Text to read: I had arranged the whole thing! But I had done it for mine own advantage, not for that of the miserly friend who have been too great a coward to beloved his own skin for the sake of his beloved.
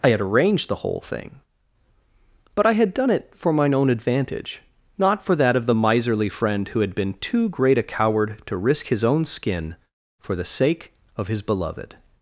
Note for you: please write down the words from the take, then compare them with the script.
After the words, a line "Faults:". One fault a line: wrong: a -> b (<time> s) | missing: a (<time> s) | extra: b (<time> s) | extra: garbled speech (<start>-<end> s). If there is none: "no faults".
I had arranged the whole thing! But I had done it for mine own advantage, not for that of the miserly friend who had been too great a coward to risk his own skin for the sake of his beloved.
Faults:
wrong: have -> had (6.8 s)
wrong: beloved -> risk (8.6 s)